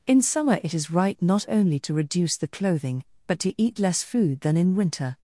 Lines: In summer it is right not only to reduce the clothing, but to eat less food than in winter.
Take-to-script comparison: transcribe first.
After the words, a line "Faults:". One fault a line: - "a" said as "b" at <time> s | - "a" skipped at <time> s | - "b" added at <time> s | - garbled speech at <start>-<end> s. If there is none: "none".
In summer it is right not only to reduce the clothing, but to eat less food than in winter.
Faults:
none